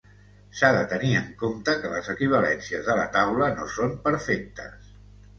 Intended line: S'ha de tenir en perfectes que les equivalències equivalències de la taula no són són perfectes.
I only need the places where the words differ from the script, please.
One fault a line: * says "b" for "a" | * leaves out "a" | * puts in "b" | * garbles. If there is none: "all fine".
* says "compte" for "perfectes"
* leaves out "equivalències"
* leaves out "són"